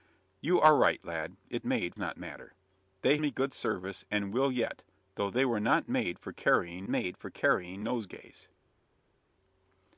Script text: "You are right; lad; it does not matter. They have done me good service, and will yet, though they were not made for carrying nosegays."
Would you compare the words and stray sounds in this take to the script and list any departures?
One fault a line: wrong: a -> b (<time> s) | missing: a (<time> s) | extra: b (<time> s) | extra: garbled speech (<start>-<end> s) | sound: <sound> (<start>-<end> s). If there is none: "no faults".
wrong: does -> made (1.6 s)
missing: have done (3.2 s)
extra: made for carrying (6.9 s)